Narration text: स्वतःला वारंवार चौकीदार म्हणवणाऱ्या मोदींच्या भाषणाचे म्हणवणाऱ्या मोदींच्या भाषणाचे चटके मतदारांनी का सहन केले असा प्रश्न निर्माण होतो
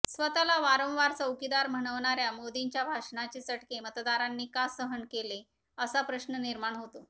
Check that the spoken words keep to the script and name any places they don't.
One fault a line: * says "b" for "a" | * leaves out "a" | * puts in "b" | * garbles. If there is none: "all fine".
* leaves out "म्हणवणाऱ्या मोदींच्या भाषणाचे"